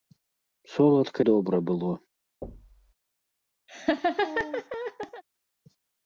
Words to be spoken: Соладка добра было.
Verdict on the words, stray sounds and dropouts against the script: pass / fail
fail